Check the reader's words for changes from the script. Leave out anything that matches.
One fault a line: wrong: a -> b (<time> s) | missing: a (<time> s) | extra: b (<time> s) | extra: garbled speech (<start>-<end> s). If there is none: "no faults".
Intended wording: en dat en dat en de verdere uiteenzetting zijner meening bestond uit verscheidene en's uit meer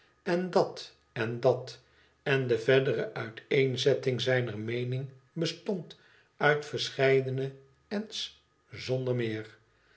wrong: uit -> zonder (8.7 s)